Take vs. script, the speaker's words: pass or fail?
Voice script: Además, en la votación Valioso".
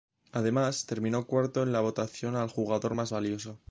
fail